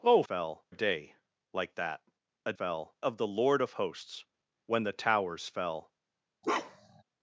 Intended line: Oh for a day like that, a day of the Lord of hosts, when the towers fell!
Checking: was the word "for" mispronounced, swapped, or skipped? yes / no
yes